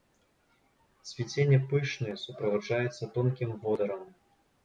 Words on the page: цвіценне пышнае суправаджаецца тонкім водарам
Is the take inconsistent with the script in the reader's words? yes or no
no